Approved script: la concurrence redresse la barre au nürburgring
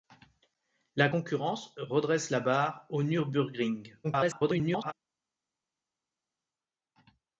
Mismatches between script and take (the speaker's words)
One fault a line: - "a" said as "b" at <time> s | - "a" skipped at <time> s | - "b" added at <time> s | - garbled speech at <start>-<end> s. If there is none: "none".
- garbled speech at 4.0-4.9 s